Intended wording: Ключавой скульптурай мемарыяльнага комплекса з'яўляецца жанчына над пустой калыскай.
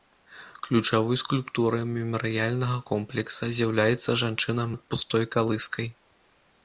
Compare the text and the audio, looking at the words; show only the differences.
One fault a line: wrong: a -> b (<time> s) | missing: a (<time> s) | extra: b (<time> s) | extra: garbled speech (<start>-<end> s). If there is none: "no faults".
no faults